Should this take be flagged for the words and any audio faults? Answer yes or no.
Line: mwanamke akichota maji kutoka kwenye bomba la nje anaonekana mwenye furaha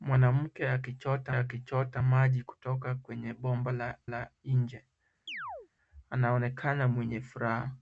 yes